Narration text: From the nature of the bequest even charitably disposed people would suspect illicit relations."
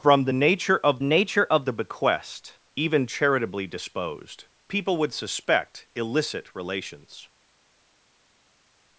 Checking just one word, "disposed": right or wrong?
right